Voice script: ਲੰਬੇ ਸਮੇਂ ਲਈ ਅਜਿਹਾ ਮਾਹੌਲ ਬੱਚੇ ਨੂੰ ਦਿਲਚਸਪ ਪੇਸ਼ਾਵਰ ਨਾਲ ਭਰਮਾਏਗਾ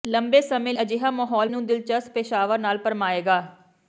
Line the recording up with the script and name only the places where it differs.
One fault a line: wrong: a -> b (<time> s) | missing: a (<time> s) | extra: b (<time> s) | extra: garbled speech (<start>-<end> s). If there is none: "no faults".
missing: ਲਈ (0.7 s)
missing: ਬੱਚੇ (1.5 s)